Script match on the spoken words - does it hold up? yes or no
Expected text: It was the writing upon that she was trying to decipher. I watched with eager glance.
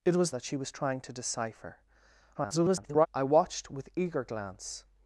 no